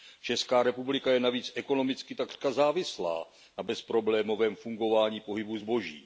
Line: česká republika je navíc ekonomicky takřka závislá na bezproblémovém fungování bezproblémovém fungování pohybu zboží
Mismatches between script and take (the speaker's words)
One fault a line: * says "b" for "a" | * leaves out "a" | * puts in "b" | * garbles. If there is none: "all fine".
* leaves out "bezproblémovém fungování"